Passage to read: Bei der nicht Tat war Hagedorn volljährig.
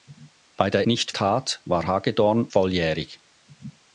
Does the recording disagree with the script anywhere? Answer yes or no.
no